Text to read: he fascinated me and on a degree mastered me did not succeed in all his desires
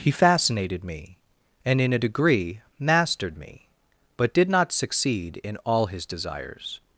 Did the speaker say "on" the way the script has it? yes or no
no